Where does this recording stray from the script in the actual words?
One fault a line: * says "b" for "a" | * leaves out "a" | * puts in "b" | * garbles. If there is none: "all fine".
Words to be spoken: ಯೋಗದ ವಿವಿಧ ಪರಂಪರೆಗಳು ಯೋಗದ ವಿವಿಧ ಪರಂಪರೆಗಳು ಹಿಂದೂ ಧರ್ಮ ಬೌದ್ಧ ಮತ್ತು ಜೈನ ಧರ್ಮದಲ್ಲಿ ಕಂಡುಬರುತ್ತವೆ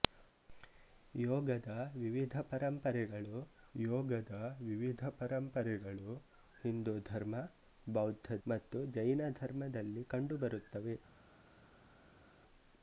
all fine